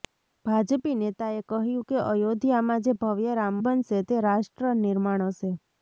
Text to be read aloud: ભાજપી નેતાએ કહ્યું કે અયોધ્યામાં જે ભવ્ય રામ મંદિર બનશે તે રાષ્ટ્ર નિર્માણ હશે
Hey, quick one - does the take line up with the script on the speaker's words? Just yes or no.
no